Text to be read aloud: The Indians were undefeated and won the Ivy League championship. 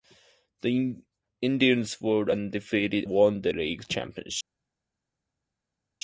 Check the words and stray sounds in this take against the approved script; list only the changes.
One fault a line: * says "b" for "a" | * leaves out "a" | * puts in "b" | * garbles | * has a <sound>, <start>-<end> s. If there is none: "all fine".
* leaves out "and"
* leaves out "Ivy"